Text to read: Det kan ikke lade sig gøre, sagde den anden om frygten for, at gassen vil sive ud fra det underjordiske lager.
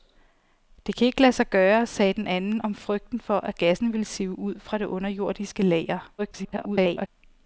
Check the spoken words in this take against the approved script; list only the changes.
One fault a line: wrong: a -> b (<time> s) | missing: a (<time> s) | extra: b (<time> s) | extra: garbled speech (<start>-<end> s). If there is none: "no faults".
extra: garbled speech (6.2-7.1 s)